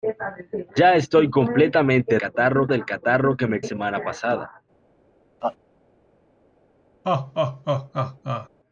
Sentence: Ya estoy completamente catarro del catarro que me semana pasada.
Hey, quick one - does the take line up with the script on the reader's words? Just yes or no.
yes